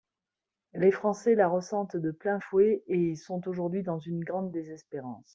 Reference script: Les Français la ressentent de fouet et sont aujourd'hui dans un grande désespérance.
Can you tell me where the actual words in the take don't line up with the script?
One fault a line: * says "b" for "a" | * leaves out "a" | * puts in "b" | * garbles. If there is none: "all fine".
* puts in "plein"
* says "une" for "un"